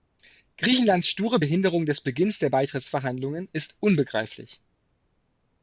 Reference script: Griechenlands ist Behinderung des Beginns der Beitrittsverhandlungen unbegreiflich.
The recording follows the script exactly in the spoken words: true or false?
false